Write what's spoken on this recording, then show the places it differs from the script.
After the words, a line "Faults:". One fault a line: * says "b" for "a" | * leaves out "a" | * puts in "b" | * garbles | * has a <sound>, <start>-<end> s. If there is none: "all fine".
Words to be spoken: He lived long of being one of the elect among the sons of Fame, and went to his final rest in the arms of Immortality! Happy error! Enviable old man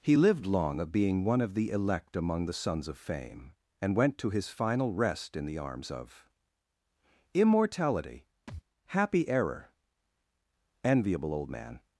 He lived long of being one of the elect among the sons of Fame, and went to his final rest in the arms of Immortality! Happy error! Enviable old man
Faults:
* has a thud, 8.5-8.6 s